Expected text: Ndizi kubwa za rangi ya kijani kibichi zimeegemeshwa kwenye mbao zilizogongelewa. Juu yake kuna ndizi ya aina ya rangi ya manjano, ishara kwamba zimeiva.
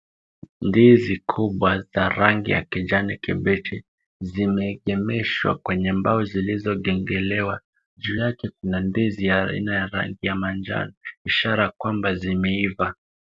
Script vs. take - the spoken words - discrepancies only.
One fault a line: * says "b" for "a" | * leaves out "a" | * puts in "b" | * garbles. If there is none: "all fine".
all fine